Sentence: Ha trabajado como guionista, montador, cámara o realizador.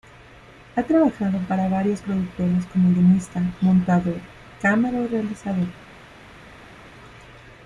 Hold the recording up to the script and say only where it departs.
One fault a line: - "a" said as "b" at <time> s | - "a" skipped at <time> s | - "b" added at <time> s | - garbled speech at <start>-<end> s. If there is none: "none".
- "para varias productoras" added at 1.5 s